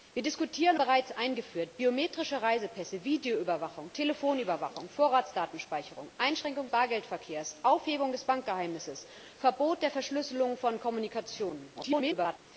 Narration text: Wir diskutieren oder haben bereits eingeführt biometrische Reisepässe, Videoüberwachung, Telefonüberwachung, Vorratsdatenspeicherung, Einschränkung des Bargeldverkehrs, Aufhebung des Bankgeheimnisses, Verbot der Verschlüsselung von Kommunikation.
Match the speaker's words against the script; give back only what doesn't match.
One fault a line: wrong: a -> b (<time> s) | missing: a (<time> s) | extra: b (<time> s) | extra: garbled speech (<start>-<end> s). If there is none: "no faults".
missing: oder haben (0.8 s)
missing: des (6.7 s)
extra: garbled speech (11.7-12.4 s)